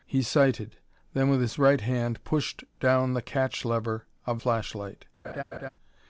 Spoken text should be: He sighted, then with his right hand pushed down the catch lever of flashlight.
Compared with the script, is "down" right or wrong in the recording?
right